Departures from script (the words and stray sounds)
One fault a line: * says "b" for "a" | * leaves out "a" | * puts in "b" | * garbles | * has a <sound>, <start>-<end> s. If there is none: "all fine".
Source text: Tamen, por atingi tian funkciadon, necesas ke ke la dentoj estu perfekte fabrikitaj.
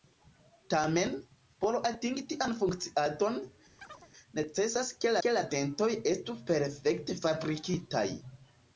* has a chirp, 3.8-4.1 s